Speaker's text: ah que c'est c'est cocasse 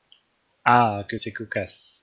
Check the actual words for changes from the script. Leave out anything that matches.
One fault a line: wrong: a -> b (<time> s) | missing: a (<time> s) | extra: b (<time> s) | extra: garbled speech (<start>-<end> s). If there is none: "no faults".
missing: c'est (1.3 s)